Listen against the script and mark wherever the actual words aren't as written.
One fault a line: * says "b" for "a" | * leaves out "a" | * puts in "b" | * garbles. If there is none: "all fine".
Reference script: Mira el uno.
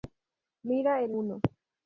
all fine